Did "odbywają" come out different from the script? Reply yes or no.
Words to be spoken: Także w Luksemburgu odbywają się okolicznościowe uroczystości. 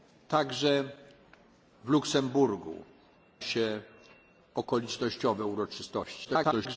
yes